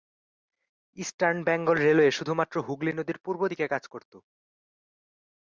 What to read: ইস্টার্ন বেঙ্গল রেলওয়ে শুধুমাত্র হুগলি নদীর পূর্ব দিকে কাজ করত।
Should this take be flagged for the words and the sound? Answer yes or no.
no